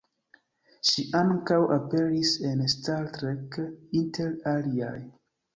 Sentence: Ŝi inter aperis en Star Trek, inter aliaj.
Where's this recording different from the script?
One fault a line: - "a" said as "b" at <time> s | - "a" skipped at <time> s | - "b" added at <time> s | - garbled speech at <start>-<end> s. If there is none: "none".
- "inter" said as "ankaŭ" at 1.2 s